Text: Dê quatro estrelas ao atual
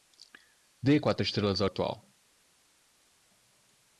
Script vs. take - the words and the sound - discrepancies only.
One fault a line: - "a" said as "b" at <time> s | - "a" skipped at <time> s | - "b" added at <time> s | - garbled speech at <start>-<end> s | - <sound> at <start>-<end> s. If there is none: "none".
none